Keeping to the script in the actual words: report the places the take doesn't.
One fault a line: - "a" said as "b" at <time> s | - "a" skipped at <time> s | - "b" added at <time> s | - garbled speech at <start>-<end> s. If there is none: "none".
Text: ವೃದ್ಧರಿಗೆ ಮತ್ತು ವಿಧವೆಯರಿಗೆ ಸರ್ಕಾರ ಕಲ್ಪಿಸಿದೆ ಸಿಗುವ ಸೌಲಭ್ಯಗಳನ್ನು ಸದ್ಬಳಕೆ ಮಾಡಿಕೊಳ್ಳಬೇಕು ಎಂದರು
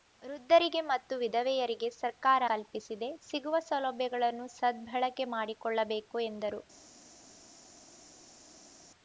none